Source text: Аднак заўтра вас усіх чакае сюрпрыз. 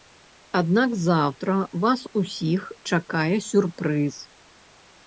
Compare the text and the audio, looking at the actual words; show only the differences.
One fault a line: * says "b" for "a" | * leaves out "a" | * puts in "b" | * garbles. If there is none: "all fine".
all fine